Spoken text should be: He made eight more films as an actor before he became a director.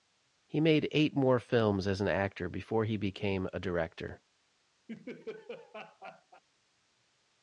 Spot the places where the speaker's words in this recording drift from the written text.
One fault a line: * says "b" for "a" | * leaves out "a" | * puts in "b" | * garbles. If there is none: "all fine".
all fine